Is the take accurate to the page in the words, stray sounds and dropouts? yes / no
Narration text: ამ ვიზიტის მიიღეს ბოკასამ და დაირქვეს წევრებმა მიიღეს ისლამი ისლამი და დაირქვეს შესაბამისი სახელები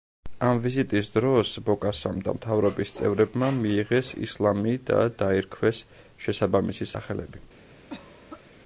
no